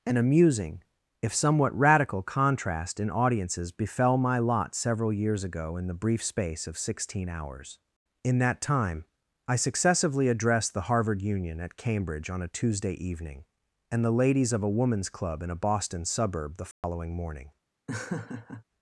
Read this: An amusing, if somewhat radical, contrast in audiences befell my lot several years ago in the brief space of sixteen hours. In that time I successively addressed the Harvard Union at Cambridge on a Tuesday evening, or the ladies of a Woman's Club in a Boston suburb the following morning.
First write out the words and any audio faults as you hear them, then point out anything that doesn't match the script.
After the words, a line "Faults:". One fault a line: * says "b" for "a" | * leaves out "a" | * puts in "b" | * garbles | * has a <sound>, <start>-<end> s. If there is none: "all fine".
An amusing, if somewhat radical, contrast in audiences befell my lot several years ago in the brief space of sixteen hours. In that time I successively addressed the Harvard Union at Cambridge on a Tuesday evening, and the ladies of a Woman's Club in a Boston suburb the following morning.
Faults:
* says "and" for "or"
* has a dropout, 16.7-16.8 s
* has a laugh, 17.9-18.6 s